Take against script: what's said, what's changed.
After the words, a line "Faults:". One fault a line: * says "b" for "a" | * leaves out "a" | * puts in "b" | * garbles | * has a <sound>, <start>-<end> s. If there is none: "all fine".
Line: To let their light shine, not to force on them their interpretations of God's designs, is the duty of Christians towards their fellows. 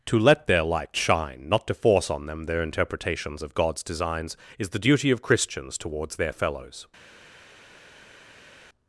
To let their light shine, not to force on them their interpretations of God's designs, is the duty of Christians towards their fellows.
Faults:
all fine